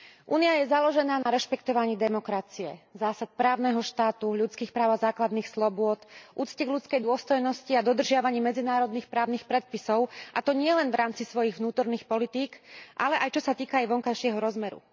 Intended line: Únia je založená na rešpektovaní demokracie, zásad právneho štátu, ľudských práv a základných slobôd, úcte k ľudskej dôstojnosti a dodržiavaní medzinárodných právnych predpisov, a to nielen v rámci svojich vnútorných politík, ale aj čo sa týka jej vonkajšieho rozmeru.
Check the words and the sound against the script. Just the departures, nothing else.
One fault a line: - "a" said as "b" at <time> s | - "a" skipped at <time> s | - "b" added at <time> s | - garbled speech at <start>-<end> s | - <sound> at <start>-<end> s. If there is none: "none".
- dropout at 1.2-1.3 s